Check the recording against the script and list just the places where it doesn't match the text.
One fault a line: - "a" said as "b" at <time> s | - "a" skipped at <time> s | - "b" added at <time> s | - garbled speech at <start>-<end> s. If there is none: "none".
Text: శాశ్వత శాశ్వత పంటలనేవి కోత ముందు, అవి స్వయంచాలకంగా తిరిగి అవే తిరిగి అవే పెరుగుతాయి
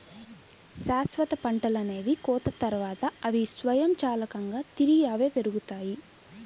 - "శాశ్వత" skipped at 1.3 s
- "ముందు" said as "తర్వాత" at 2.6 s
- "తిరిగి అవే" skipped at 5.3 s